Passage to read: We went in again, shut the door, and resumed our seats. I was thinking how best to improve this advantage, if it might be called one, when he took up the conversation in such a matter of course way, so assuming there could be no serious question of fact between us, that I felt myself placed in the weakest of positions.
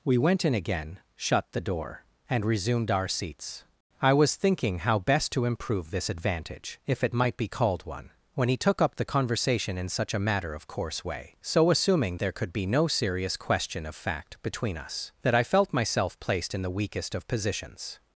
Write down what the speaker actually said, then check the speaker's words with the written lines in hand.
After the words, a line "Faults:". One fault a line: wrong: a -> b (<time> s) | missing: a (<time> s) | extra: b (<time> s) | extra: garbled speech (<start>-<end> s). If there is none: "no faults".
We went in again, shut the door, and resumed our seats. I was thinking how best to improve this advantage, if it might be called one, when he took up the conversation in such a matter of course way, so assuming there could be no serious question of fact between us, that I felt myself placed in the weakest of positions.
Faults:
no faults